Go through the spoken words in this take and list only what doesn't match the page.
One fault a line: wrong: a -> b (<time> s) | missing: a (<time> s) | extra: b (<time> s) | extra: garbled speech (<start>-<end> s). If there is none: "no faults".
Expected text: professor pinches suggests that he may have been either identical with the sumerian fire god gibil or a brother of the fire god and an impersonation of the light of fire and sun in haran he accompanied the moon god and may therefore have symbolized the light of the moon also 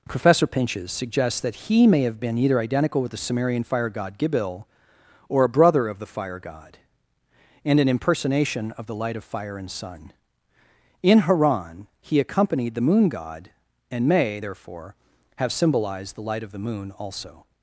no faults